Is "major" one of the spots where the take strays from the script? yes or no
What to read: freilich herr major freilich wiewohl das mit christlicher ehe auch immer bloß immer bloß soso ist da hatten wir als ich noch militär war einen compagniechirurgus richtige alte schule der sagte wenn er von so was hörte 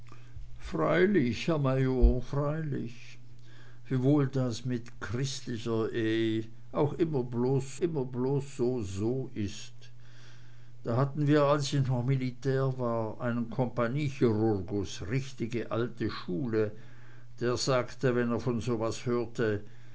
no